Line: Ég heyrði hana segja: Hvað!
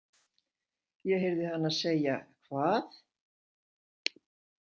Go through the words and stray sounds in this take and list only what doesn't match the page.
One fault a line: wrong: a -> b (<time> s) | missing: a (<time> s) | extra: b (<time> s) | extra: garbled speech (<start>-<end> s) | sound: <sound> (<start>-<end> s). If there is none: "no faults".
no faults